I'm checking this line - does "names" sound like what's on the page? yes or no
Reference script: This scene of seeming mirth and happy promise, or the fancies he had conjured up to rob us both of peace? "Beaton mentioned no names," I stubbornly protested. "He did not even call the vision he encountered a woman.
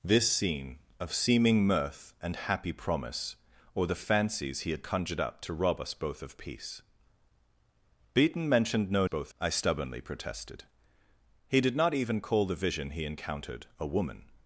no